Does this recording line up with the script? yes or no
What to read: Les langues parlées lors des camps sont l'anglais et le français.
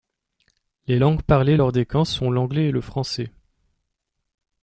yes